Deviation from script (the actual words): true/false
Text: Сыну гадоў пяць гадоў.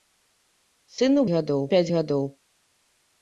false